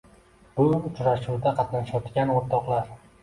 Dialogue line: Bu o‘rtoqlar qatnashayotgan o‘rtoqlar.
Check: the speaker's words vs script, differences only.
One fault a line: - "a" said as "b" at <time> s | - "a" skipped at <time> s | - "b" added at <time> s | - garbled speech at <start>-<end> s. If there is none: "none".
- "o‘rtoqlar" said as "uchrashuvda" at 0.8 s